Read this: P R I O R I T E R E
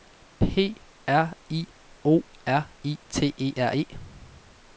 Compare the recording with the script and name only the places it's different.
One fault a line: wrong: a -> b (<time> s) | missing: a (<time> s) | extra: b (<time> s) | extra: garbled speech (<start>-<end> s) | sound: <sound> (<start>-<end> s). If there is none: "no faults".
no faults